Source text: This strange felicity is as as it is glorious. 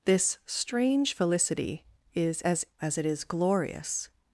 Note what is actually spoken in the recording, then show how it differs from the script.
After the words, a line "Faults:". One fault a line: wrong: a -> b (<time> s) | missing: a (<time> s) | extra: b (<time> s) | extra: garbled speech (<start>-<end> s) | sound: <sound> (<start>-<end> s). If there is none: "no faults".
This strange felicity is as as it is glorious.
Faults:
no faults